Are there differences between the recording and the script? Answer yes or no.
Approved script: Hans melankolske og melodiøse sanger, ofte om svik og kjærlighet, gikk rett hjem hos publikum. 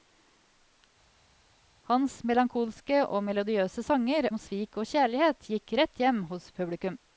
yes